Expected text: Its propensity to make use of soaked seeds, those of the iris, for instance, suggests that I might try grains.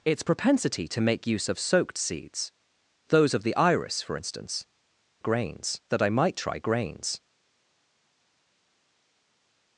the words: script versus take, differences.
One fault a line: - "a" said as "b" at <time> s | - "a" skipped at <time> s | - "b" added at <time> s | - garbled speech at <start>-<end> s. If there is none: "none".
- "suggests" said as "grains" at 5.2 s